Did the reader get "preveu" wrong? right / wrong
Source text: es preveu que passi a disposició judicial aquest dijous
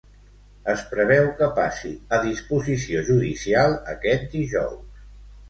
right